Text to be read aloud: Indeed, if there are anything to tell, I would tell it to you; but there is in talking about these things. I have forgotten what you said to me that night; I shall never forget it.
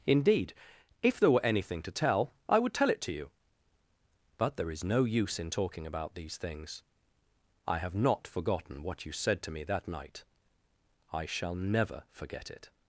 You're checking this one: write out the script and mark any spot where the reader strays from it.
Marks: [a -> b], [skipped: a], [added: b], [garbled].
Indeed, if there [are -> were] anything to tell, I would tell it to you; but there is [added: no use] in talking about these things. I have [added: not] forgotten what you said to me that night; I shall never forget it.